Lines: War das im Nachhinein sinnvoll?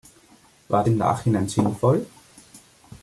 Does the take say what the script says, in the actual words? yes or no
no